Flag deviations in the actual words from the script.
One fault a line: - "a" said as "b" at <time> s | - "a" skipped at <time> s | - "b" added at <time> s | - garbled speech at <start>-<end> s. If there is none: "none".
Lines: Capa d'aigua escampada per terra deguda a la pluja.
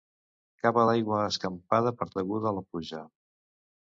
- "terra" skipped at 2.1 s